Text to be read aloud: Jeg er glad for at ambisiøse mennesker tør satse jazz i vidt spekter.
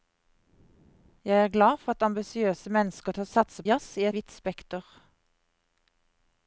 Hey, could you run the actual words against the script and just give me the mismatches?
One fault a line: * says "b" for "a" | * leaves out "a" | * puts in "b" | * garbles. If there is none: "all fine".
all fine